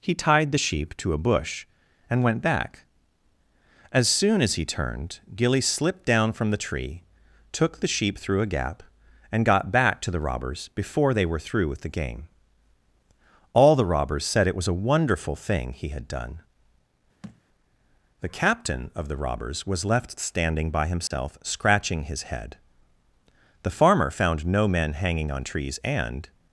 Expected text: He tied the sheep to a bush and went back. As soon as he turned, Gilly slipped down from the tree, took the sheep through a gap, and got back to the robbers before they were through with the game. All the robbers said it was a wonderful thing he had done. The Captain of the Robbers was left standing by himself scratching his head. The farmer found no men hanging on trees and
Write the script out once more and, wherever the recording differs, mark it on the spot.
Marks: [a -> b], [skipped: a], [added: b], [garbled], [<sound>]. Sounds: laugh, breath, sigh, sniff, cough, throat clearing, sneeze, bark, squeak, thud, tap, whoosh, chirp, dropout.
He tied the sheep to a bush and went back. As soon as he turned, Gilly slipped down from the tree, took the sheep through a gap, and got back to the robbers before they were through with the game. All the robbers said it was a wonderful thing he had done. [thud] The Captain of the Robbers was left standing by himself [dropout] scratching his head. The farmer found no men hanging on trees and